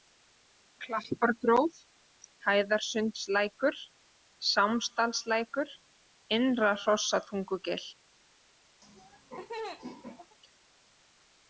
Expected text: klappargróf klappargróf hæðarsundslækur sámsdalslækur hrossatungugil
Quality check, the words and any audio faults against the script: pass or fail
fail